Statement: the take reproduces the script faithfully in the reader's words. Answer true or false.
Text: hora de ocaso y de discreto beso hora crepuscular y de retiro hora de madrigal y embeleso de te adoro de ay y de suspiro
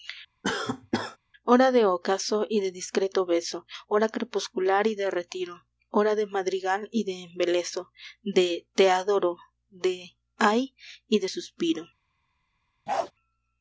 false